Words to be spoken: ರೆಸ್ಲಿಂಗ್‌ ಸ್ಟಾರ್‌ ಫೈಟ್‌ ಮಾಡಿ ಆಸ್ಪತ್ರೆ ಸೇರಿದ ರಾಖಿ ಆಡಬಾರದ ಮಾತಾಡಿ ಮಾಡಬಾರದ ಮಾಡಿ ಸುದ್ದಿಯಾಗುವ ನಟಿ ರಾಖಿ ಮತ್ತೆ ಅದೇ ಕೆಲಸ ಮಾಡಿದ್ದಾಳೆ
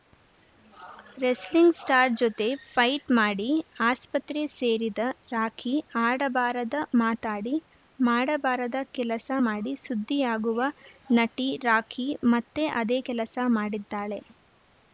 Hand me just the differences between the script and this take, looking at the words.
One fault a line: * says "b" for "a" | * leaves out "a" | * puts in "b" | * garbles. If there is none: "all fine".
* puts in "ಜೊತೆ"
* puts in "ಕೆಲಸ"